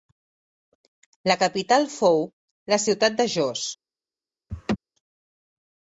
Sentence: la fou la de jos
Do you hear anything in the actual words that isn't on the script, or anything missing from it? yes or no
yes